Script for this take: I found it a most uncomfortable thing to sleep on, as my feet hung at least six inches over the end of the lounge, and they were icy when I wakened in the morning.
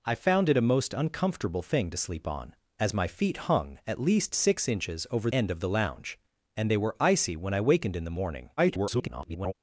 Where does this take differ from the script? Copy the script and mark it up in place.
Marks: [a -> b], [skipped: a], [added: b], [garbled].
I found it a most uncomfortable thing to sleep on, as my feet hung at least six inches over [skipped: the] end of the lounge, and they were icy when I wakened in the morning. [garbled]